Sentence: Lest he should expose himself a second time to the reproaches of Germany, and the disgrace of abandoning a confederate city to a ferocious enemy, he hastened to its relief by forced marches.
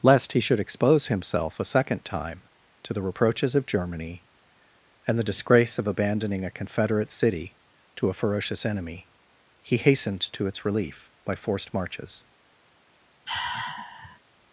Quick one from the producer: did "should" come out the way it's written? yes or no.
yes